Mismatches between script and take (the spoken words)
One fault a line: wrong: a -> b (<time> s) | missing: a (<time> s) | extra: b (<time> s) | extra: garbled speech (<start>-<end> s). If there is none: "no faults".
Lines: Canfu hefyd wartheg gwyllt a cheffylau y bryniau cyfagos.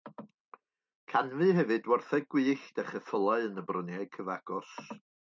extra: yn (3.5 s)